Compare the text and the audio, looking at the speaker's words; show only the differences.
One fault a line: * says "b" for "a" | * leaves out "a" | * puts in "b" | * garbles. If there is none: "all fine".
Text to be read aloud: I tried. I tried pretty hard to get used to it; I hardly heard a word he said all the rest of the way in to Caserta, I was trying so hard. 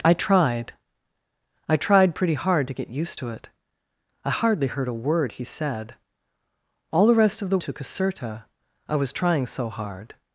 * leaves out "way in"